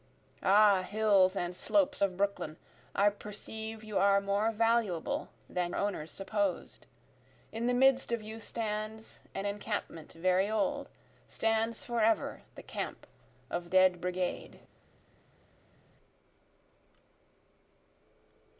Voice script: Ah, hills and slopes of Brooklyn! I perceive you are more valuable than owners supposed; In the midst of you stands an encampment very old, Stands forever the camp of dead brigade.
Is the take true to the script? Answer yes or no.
yes